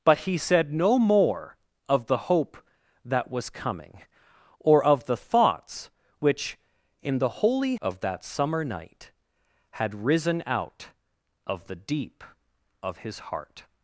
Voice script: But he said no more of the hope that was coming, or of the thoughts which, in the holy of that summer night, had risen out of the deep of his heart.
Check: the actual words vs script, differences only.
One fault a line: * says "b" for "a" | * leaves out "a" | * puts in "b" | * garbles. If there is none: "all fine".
all fine